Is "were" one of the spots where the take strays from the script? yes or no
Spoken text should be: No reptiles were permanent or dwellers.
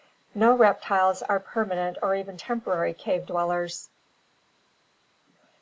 yes